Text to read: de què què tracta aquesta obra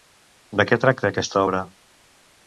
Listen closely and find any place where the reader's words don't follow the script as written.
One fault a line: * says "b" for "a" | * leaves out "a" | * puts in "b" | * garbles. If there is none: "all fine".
* leaves out "què"